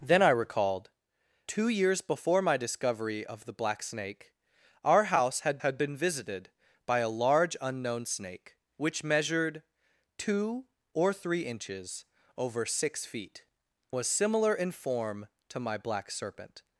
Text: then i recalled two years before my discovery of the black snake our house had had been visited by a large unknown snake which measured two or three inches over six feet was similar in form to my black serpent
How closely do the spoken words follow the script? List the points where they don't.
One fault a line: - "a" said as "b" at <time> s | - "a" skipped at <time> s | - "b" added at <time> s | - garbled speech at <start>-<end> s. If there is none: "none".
none